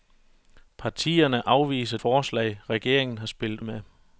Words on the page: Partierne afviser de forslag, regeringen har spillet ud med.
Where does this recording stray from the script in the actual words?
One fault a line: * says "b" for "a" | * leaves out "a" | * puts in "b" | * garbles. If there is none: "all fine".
* leaves out "de"
* leaves out "ud"